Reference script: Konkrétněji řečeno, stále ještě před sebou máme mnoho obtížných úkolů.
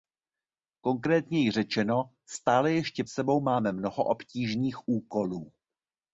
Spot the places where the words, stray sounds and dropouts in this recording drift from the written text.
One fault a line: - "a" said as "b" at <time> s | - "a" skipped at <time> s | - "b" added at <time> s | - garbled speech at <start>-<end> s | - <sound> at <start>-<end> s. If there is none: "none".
- "před" skipped at 3.0 s